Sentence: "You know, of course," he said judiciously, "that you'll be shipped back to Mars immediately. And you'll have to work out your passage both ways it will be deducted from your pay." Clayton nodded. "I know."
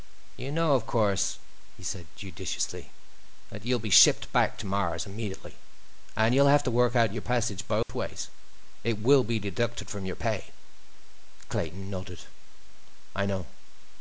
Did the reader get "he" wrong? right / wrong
right